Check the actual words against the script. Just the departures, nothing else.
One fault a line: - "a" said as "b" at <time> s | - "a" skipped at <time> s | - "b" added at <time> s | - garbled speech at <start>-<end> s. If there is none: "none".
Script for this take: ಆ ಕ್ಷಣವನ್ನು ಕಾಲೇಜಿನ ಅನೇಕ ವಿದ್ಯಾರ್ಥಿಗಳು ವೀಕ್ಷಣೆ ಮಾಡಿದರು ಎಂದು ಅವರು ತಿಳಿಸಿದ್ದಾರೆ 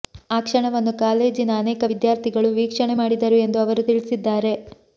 none